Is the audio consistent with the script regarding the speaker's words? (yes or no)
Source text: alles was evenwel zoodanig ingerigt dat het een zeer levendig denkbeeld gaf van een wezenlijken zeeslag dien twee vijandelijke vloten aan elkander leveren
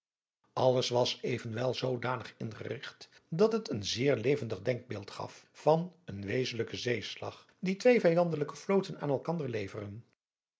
yes